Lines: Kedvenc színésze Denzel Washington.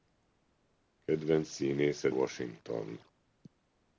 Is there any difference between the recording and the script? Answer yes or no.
yes